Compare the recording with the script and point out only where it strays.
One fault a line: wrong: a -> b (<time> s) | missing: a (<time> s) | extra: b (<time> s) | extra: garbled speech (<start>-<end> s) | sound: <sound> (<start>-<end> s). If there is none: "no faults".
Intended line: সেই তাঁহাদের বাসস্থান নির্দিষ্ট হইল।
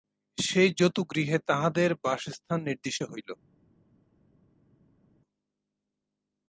extra: জতুগৃহে (0.7 s)